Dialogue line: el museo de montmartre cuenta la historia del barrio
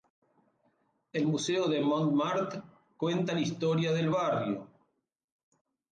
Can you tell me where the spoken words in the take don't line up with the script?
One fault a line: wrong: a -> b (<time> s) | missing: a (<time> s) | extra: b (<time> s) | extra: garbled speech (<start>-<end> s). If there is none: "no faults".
no faults